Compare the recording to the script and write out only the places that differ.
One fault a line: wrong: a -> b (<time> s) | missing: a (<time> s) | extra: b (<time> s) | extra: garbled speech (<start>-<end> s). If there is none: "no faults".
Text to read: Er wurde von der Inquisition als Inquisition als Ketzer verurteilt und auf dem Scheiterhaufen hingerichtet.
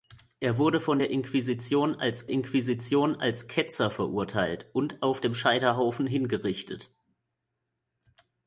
no faults